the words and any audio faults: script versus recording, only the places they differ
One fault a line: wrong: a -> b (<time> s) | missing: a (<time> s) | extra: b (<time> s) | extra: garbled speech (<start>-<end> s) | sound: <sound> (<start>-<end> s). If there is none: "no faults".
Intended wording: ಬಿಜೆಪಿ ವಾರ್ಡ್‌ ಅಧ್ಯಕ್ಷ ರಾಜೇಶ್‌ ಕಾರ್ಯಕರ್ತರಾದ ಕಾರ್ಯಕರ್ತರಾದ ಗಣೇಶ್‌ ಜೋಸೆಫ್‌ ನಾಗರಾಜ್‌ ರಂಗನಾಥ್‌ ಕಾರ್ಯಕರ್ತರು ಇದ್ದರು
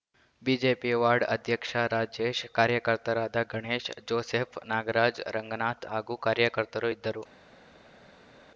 missing: ಕಾರ್ಯಕರ್ತರಾದ (3.4 s)
extra: ಹಾಗೂ (5.9 s)